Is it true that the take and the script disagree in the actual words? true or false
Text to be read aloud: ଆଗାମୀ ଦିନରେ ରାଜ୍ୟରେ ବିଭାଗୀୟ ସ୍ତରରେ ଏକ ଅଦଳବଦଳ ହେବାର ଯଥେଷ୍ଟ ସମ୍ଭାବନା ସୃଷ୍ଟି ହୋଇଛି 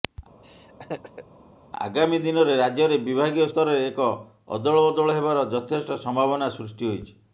false